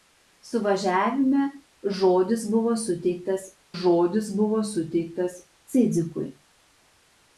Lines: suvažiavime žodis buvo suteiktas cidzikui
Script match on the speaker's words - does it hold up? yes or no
no